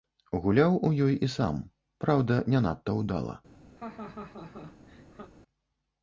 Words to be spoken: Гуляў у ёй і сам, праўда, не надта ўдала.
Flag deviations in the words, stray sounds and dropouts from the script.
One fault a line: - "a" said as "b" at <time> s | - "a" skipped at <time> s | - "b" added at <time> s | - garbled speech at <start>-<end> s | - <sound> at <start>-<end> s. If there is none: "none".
- laugh at 3.8-5.3 s